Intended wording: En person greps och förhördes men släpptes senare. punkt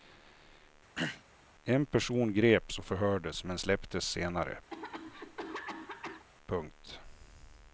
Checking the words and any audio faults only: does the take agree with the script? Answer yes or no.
no